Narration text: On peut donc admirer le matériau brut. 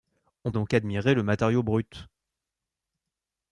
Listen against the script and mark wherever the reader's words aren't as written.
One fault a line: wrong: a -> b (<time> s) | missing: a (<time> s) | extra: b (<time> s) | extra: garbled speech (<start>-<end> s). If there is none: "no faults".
missing: peut (0.5 s)